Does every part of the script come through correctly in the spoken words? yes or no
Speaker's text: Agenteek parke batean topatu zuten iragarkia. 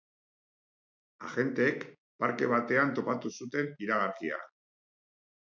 yes